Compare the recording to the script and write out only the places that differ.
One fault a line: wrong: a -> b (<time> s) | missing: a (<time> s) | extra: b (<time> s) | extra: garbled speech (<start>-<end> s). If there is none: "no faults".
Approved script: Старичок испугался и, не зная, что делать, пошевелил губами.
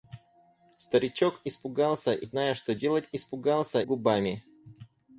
missing: не (2.3 s)
wrong: пошевелил -> испугался (3.1 s)